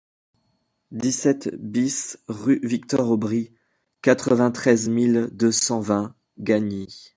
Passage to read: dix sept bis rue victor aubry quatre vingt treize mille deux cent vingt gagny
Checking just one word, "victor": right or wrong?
right